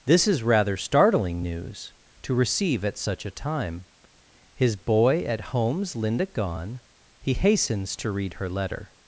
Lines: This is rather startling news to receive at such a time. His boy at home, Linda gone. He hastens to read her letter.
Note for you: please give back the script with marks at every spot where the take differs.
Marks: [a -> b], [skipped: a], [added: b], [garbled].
This is rather startling news to receive at such a time. His boy at [home, -> homes] Linda gone. He hastens to read her letter.